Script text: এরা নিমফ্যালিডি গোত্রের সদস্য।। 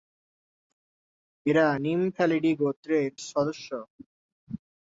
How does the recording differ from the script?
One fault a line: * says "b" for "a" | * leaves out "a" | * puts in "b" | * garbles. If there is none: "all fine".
all fine